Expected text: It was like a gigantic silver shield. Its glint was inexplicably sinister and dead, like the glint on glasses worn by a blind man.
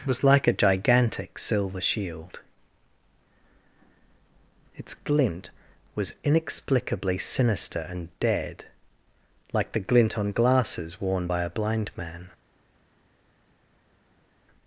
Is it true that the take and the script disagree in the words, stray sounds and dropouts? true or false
true